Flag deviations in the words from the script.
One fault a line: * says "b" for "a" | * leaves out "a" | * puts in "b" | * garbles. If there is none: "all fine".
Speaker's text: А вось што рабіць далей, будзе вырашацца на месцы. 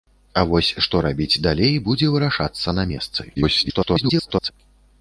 * garbles